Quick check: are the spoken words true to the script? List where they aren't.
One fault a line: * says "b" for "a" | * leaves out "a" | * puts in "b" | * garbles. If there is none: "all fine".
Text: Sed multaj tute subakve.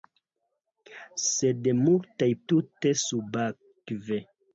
all fine